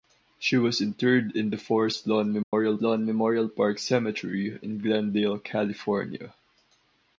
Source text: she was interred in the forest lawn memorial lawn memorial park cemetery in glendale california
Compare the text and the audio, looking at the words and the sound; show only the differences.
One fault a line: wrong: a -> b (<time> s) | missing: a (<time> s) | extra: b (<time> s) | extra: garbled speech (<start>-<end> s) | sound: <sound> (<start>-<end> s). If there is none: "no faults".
sound: dropout (2.4-2.5 s)